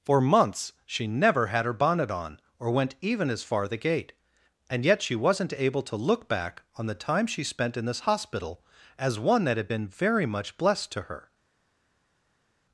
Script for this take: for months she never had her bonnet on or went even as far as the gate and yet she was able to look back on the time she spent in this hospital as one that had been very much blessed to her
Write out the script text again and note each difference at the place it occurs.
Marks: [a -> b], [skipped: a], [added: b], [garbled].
for months she never had her bonnet on or went even as far [skipped: as] the gate and yet she [was -> wasn't] able to look back on the time she spent in this hospital as one that had been very much blessed to her